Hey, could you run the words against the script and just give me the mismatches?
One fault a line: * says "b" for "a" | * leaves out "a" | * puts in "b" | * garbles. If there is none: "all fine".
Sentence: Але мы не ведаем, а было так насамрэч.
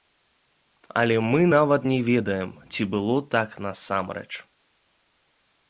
* puts in "нават"
* says "ці" for "а"